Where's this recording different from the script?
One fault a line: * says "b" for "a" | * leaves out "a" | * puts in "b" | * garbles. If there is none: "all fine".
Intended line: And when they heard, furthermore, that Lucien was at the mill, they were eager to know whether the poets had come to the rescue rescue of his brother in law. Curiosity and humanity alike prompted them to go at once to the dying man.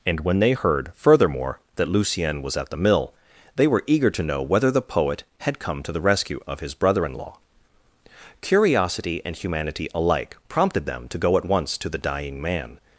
* says "poet" for "poets"
* leaves out "rescue"